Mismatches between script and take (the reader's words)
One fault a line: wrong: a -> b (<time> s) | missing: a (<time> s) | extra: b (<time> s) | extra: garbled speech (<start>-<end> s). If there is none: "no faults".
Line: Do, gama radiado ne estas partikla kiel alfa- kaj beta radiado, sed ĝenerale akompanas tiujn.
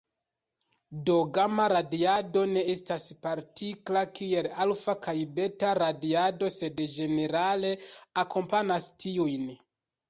no faults